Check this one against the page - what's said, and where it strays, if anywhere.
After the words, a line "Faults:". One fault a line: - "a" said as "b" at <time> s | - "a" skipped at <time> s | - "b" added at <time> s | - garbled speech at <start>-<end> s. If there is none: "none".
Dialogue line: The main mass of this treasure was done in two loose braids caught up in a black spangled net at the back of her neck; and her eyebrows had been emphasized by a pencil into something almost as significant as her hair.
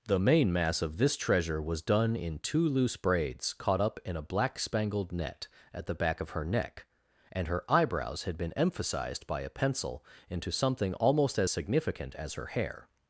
The main mass of this treasure was done in two loose braids caught up in a black spangled net at the back of her neck; and her eyebrows had been emphasized by a pencil into something almost as significant as her hair.
Faults:
none